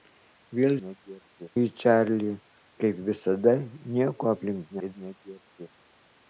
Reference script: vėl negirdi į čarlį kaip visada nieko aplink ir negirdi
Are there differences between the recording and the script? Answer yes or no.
no